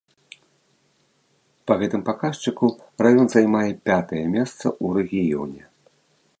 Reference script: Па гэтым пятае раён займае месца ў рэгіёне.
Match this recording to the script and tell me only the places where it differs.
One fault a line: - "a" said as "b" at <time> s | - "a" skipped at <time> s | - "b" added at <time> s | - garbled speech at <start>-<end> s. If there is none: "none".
- "пятае" said as "паказчыку" at 2.1 s
- "пятае" added at 3.9 s